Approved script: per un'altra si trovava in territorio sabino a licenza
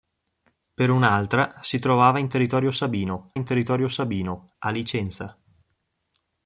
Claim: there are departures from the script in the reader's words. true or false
true